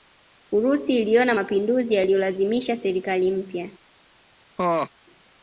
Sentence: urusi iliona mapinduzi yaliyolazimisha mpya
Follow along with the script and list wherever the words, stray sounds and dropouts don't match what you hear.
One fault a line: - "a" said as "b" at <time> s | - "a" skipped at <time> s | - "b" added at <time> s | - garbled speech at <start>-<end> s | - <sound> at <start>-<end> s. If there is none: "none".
- "serikali" added at 2.8 s
- laugh at 4.6-4.9 s